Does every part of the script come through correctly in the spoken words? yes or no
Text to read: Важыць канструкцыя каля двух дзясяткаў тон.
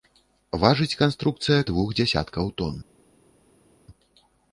no